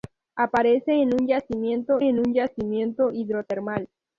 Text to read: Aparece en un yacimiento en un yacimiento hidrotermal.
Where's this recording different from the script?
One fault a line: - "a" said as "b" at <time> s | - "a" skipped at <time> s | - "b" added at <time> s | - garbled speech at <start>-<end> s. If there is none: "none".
none